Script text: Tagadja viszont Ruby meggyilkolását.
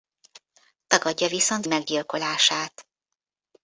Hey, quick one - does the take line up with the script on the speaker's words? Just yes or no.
no